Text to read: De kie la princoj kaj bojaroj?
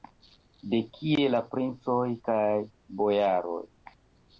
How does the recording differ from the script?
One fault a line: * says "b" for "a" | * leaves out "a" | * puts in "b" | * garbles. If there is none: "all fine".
all fine